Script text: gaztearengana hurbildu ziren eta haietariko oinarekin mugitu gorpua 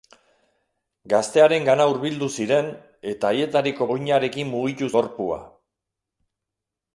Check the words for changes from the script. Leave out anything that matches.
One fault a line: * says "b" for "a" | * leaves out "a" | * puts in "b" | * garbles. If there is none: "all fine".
all fine